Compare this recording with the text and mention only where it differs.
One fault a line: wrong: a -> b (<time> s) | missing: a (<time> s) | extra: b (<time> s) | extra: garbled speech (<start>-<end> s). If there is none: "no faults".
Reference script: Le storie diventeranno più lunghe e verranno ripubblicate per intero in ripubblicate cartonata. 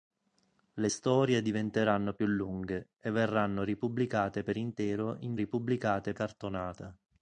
no faults